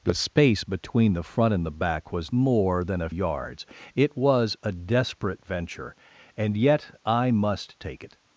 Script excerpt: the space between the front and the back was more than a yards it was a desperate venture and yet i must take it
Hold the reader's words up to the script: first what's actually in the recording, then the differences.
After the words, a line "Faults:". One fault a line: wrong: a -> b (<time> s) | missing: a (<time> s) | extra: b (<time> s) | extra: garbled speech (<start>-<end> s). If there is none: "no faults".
the space between the front and the back was more than a yards it was a desperate venture and yet i must take it
Faults:
no faults